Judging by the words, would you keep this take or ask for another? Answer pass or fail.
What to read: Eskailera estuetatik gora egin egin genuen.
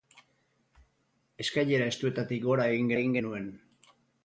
pass